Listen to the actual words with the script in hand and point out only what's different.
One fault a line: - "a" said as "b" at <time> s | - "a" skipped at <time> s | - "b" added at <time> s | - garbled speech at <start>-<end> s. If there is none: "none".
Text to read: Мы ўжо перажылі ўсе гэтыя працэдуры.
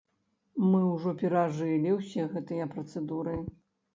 none